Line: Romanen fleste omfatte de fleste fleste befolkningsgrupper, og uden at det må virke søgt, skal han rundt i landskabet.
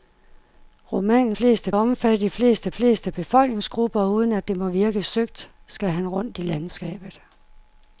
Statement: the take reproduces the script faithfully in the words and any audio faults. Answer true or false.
true